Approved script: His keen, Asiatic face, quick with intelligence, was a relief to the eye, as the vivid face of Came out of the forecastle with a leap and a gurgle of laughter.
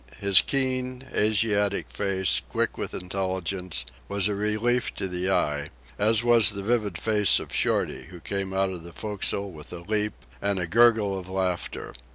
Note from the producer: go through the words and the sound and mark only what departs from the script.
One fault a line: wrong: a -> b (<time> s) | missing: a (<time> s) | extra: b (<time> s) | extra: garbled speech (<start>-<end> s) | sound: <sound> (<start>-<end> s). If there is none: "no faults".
extra: was (6.2 s)
extra: Shorty who (7.5 s)